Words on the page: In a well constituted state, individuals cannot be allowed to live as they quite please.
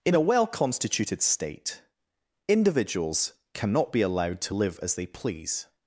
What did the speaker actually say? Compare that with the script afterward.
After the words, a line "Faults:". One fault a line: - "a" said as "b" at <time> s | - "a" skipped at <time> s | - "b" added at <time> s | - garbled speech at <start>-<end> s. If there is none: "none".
In a well constituted state, individuals cannot be allowed to live as they please.
Faults:
- "quite" skipped at 5.1 s